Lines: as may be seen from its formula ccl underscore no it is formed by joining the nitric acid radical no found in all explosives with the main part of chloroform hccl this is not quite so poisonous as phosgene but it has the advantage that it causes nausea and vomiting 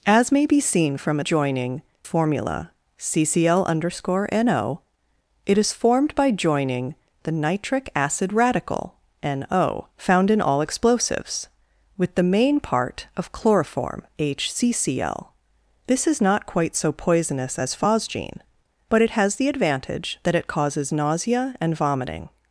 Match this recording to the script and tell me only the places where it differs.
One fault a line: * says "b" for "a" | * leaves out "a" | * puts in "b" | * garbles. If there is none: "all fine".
* says "joining" for "its"